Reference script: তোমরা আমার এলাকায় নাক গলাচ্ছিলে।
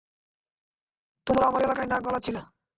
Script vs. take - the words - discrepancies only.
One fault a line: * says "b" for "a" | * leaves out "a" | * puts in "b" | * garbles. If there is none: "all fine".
all fine